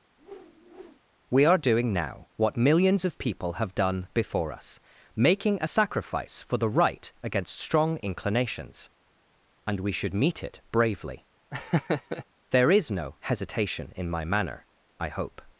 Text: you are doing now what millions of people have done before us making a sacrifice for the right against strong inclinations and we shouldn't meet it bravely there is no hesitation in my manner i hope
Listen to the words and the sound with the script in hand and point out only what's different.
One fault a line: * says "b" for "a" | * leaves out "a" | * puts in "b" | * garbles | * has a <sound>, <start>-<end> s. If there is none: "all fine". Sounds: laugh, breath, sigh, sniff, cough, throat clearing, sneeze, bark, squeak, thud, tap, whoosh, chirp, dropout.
* has a whoosh, 0.2-1.0 s
* says "we" for "you"
* says "should" for "shouldn't"
* has a laugh, 11.5-12.2 s